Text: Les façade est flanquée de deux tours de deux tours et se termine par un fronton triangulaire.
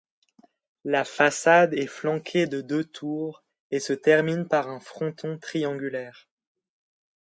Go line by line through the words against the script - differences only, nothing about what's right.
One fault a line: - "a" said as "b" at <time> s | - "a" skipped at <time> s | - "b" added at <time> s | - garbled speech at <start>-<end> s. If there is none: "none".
- "Les" said as "La" at 0.8 s
- "de deux tours" skipped at 3.4 s